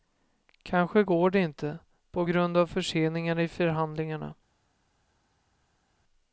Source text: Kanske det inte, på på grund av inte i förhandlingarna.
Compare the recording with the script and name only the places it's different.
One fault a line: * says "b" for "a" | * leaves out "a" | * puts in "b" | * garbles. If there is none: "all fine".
* puts in "går"
* leaves out "på"
* says "förseningar" for "inte"